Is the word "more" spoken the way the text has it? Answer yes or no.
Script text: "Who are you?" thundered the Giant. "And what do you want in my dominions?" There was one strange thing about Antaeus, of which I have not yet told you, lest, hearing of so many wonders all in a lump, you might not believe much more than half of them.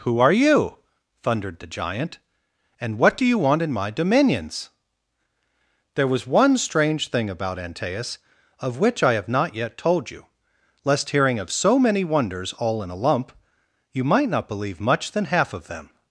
no